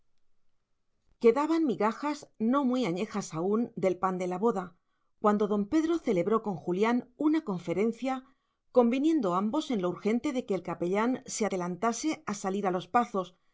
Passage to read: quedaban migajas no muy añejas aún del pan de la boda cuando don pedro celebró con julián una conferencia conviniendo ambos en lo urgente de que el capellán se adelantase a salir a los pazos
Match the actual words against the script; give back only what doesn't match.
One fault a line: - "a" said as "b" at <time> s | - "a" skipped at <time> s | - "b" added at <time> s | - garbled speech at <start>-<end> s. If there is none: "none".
none